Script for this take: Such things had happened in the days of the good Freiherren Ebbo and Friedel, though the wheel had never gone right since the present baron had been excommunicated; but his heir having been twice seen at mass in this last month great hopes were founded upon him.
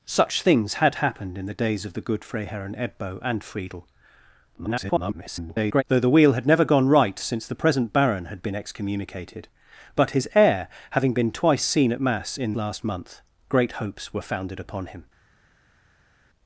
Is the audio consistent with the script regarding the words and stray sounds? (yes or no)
no